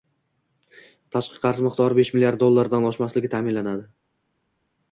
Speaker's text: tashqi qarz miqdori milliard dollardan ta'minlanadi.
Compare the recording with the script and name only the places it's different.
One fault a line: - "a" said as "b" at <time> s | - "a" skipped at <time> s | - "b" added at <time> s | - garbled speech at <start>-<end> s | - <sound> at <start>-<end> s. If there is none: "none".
- "besh" added at 2.0 s
- "oshmasligi" added at 2.9 s